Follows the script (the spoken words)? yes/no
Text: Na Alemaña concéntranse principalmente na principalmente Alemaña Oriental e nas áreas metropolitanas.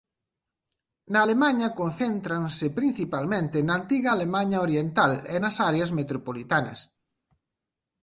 no